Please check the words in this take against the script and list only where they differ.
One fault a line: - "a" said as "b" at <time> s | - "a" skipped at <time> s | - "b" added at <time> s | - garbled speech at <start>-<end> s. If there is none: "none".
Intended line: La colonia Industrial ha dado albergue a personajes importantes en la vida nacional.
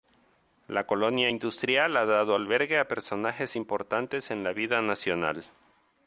none